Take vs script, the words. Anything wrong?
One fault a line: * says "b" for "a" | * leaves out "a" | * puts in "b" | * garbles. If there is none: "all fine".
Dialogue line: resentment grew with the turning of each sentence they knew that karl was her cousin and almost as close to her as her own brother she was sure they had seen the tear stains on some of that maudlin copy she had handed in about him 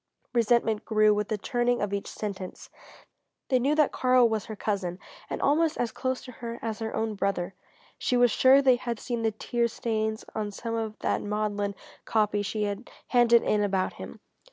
all fine